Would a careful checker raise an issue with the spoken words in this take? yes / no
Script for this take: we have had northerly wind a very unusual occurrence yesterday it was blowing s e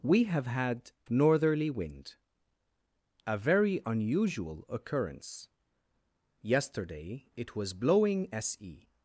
no